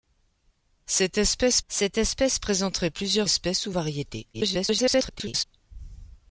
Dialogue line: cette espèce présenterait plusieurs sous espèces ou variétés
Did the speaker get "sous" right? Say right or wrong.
wrong